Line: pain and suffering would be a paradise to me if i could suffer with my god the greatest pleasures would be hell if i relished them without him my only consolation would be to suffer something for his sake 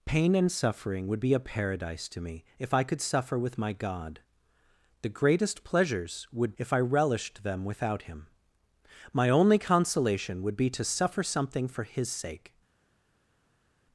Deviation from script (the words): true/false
true